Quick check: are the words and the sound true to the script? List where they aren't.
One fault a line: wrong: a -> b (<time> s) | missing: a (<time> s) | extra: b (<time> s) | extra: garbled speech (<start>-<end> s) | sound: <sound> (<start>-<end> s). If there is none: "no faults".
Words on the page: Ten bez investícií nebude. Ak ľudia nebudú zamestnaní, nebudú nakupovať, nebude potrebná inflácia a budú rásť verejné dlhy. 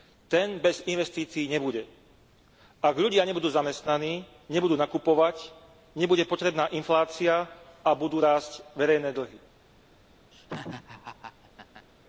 sound: laugh (10.3-11.9 s)